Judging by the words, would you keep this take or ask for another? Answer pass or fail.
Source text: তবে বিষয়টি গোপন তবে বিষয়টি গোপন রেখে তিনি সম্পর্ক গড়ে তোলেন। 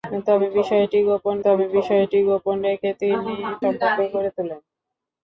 pass